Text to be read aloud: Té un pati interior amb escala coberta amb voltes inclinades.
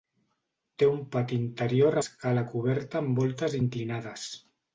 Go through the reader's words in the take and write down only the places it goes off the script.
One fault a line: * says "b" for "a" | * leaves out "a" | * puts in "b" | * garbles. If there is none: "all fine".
* leaves out "amb"